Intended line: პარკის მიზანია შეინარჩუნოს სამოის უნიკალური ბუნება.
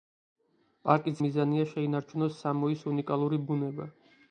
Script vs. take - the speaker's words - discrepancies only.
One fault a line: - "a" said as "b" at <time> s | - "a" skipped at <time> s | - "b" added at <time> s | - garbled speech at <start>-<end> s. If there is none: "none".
none